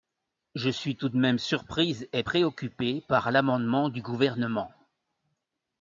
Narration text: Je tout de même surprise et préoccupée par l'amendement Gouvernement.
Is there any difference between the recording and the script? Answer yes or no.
yes